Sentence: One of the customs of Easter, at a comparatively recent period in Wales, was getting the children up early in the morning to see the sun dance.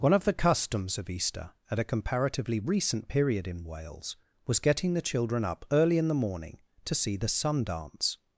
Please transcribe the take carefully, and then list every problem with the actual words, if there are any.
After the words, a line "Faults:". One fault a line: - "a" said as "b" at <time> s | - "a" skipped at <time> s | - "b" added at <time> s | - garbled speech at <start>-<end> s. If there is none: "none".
One of the customs of Easter, at a comparatively recent period in Wales, was getting the children up early in the morning to see the sun dance.
Faults:
none